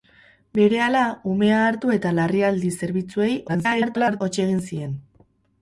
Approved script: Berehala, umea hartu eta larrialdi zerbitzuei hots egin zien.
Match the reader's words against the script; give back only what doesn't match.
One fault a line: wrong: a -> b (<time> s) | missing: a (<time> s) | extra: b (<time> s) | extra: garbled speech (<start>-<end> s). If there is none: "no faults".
extra: garbled speech (3.5-4.2 s)